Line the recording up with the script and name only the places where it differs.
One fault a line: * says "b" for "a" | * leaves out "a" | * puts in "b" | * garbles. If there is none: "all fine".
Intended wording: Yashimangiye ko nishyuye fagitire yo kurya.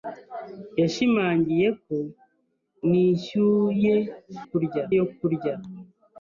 * says "kurya" for "fagitire"